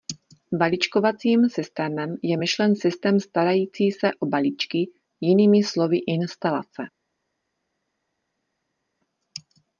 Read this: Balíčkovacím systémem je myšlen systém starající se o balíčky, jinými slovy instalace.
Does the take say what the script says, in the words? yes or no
yes